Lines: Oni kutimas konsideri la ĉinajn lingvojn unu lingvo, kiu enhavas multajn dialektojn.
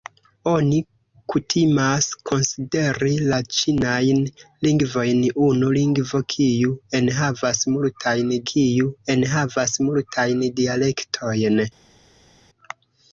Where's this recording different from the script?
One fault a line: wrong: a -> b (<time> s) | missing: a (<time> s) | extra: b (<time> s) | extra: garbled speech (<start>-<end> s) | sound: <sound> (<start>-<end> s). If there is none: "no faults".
extra: kiu enhavas multajn (8.5 s)